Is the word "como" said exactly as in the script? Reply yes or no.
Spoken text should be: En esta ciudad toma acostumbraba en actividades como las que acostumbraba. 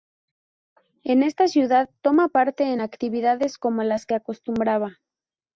yes